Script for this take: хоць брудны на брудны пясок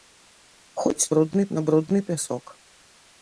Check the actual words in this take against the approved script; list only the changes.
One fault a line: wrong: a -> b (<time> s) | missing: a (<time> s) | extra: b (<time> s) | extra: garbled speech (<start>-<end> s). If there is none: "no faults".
no faults